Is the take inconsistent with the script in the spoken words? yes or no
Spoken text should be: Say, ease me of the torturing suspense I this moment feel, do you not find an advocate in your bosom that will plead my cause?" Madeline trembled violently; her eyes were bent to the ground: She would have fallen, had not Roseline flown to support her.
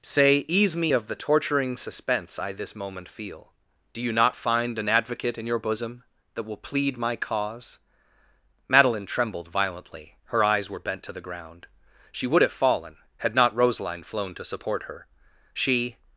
yes